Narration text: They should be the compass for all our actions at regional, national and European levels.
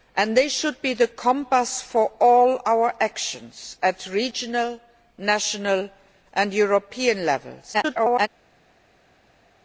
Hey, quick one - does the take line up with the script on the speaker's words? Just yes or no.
no